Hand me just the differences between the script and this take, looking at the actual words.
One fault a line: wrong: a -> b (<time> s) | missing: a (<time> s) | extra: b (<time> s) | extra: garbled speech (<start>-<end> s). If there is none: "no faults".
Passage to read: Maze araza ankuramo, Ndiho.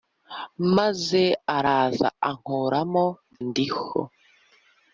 no faults